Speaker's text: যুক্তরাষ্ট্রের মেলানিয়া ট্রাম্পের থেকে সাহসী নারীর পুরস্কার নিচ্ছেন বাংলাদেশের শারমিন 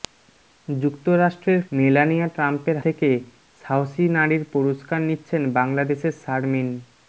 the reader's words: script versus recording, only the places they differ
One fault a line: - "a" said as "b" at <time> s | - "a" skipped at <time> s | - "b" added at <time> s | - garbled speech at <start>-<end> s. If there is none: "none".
none